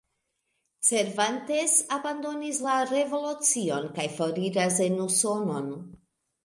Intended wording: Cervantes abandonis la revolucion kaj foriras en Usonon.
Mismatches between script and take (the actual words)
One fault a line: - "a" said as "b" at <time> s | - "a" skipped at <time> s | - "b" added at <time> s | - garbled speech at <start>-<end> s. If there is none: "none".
none